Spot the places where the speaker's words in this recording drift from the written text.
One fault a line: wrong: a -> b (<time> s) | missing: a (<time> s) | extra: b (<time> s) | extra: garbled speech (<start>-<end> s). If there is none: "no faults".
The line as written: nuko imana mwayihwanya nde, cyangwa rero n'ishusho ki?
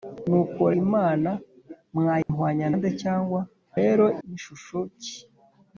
no faults